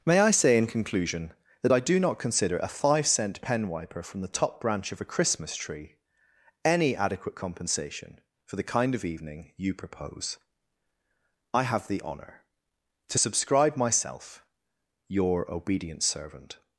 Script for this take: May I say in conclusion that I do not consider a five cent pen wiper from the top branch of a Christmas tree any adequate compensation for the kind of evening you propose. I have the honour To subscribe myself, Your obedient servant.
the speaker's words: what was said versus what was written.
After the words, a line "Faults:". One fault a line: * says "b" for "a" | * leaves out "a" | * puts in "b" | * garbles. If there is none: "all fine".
May I say in conclusion that I do not consider a five cent pen wiper from the top branch of a Christmas tree any adequate compensation for the kind of evening you propose. I have the honour To subscribe myself, Your obedient servant.
Faults:
all fine